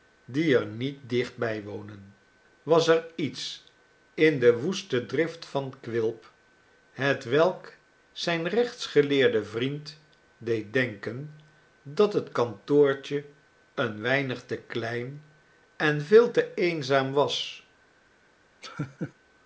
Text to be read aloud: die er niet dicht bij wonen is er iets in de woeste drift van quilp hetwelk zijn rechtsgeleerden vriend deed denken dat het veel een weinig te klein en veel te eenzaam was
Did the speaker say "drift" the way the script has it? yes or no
yes